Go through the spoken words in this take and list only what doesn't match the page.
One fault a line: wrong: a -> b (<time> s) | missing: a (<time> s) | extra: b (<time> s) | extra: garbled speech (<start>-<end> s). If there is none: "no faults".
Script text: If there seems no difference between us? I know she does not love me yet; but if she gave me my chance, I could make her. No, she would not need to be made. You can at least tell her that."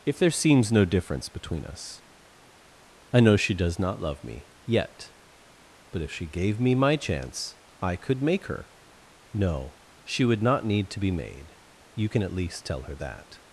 no faults